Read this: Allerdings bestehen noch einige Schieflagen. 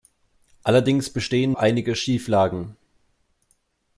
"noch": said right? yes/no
no